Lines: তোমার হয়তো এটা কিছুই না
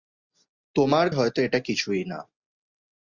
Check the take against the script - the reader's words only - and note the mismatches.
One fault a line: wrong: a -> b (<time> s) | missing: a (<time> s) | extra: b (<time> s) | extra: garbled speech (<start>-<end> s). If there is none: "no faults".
no faults